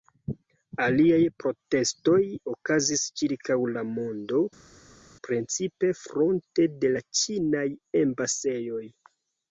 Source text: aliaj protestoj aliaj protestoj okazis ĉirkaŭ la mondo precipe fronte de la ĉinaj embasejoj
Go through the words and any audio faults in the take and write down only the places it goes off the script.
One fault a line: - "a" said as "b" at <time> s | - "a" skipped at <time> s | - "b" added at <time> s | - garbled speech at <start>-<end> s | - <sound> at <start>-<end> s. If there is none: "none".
- "aliaj protestoj" skipped at 2.2 s